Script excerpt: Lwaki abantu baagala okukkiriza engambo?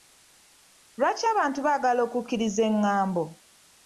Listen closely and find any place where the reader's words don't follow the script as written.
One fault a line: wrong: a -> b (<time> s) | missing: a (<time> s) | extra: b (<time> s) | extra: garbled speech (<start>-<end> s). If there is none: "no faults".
no faults